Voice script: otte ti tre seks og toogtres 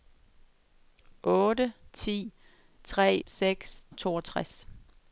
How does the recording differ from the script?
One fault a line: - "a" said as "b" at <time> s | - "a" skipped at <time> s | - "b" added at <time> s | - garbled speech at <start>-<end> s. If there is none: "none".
none